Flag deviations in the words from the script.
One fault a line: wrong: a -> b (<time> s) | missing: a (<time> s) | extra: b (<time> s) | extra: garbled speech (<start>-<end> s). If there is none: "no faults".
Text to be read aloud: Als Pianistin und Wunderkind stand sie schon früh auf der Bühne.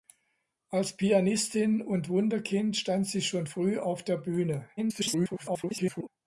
extra: garbled speech (4.8-6.1 s)